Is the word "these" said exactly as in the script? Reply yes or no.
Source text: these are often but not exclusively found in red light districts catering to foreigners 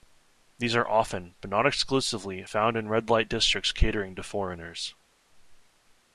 yes